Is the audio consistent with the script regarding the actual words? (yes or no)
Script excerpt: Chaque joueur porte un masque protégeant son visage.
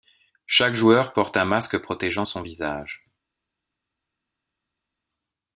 yes